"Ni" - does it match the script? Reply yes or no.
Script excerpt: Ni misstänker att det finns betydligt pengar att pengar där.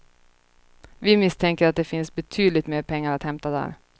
no